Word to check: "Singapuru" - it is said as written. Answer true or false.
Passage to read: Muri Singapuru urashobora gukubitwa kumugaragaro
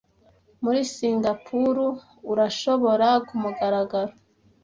true